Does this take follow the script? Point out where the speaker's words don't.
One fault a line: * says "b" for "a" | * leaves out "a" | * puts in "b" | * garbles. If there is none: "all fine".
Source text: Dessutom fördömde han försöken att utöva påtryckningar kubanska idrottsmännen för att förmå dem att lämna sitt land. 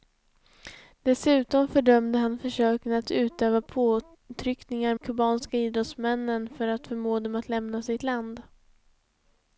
all fine